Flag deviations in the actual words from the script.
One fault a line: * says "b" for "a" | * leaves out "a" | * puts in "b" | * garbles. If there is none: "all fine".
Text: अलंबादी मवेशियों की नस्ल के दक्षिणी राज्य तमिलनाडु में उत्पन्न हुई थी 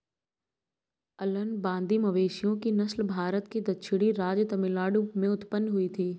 * puts in "भारत"